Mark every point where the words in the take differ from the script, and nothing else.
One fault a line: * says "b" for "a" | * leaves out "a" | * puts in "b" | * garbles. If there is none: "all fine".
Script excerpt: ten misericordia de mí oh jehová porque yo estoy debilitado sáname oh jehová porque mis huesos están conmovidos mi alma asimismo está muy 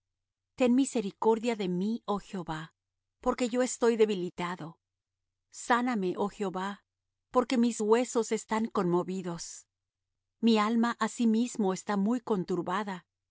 all fine